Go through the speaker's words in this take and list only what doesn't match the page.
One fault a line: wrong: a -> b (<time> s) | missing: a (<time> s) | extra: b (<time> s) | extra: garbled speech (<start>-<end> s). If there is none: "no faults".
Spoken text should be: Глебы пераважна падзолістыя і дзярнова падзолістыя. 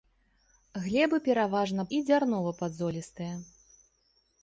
missing: падзолістыя (1.8 s)